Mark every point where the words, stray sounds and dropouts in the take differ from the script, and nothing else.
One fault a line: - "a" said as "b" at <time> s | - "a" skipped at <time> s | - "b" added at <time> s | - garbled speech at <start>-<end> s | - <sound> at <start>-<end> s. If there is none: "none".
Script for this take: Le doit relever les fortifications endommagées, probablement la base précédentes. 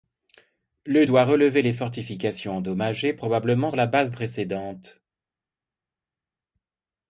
none